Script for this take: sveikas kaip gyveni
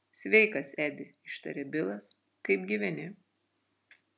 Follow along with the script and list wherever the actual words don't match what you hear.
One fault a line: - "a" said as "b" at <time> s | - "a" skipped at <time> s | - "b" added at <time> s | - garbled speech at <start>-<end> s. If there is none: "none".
- "edi ištarė bilas" added at 0.8 s